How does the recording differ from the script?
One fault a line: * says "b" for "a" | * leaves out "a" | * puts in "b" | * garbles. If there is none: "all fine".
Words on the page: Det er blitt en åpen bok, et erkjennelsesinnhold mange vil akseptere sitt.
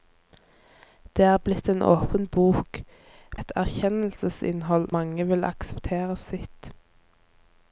all fine